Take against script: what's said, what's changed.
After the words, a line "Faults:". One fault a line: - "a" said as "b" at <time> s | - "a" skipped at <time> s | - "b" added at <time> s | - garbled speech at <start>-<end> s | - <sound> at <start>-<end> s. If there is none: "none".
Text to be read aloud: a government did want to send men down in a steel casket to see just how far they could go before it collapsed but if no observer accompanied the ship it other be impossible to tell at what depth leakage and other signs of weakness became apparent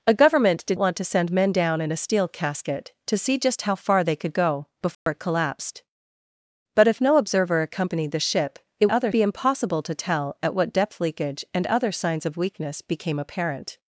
a government did want to send men down in a steel casket to see just how far they could go before it collapsed but if no observer accompanied the ship it other be impossible to tell at what depth leakage and other signs of weakness became apparent
Faults:
- dropout at 4.9-5.1 s